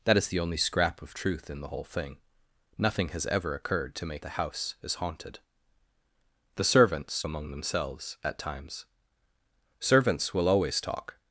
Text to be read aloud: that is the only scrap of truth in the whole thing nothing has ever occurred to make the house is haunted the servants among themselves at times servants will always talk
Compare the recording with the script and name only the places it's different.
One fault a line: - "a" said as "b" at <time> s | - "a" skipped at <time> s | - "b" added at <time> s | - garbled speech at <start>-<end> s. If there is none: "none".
none